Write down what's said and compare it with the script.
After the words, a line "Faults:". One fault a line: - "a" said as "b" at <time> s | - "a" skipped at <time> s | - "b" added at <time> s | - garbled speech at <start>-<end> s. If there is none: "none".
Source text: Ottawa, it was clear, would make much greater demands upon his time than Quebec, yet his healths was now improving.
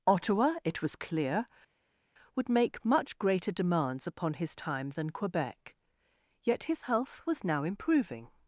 Ottawa, it was clear, would make much greater demands upon his time than Quebec, yet his health was now improving.
Faults:
- "healths" said as "health" at 6.8 s